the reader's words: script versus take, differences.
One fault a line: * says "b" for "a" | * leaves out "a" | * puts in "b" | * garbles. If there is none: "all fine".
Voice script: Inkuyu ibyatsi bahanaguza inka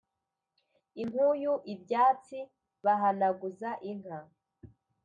all fine